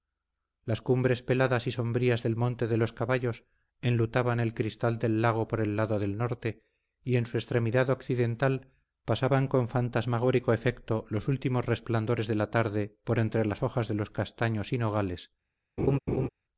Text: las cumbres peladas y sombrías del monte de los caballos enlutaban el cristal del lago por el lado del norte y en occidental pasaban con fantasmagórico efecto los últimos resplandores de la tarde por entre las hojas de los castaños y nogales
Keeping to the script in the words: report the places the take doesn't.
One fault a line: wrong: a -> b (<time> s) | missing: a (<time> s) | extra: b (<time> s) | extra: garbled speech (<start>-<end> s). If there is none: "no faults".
extra: su extremidad (7.3 s)